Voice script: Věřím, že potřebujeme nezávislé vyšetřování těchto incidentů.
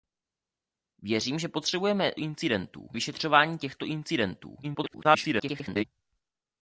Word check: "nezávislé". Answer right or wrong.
wrong